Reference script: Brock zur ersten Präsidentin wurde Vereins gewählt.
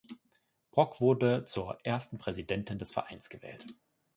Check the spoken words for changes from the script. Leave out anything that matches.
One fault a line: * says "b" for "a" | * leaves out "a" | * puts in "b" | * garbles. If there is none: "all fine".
* puts in "wurde"
* says "des" for "wurde"